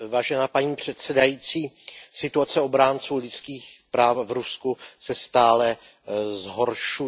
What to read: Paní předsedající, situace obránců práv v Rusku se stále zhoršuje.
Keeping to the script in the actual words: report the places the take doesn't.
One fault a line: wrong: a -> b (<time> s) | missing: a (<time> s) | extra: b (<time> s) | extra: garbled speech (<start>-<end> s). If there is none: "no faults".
extra: lidských (3.1 s)